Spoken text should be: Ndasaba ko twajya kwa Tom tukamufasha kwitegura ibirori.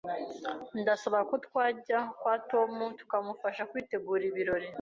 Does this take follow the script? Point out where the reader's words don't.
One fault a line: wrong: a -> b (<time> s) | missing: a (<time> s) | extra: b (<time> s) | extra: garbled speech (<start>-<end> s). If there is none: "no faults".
no faults